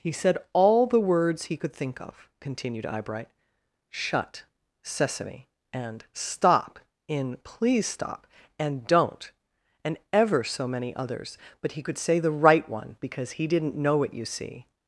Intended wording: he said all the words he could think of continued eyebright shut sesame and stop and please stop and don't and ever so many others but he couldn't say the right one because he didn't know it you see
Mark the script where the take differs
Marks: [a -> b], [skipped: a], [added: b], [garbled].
he said all the words he could think of continued eyebright shut sesame and stop [and -> in] please stop and don't and ever so many others but he [couldn't -> could] say the right one because he didn't know it you see